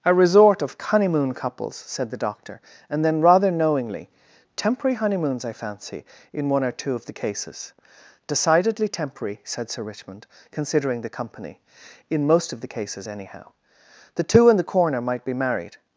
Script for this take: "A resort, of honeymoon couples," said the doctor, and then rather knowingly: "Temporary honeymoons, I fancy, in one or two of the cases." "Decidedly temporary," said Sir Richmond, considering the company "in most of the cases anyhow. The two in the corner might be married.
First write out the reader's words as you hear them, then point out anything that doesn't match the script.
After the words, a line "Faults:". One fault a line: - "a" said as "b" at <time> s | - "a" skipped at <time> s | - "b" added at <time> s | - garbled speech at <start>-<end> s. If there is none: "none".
"A resort, of honeymoon couples," said the doctor, and then rather knowingly: "Temporary honeymoons, I fancy, in one or two of the cases." "Decidedly temporary," said Sir Richmond, considering the company "in most of the cases anyhow. The two in the corner might be married.
Faults:
none